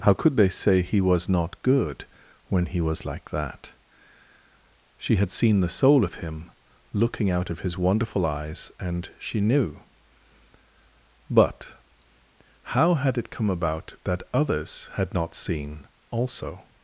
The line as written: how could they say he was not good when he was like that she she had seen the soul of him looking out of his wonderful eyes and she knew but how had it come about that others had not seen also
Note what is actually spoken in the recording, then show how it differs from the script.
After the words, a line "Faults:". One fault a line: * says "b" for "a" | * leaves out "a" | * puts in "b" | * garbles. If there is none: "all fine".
how could they say he was not good when he was like that she had seen the soul of him looking out of his wonderful eyes and she knew but how had it come about that others had not seen also
Faults:
* leaves out "she"